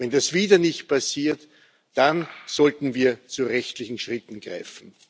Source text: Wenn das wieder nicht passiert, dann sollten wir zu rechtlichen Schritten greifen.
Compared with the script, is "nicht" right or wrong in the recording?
right